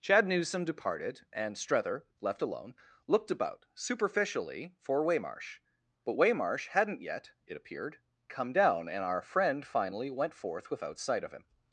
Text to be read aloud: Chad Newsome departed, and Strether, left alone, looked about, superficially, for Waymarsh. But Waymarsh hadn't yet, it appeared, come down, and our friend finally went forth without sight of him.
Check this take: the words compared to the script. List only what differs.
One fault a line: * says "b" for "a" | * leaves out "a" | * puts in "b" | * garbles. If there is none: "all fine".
all fine